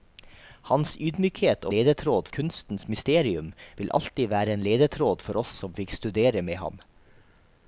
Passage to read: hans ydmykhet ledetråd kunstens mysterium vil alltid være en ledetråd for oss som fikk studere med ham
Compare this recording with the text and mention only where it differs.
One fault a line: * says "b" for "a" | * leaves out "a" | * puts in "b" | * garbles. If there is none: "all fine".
all fine